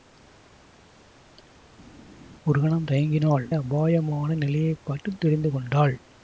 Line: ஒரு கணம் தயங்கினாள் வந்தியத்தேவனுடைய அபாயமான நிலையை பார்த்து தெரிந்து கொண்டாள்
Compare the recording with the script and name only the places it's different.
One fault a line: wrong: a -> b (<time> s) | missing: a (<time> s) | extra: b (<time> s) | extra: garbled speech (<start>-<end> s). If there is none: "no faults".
missing: வந்தியத்தேவனுடைய (3.5 s)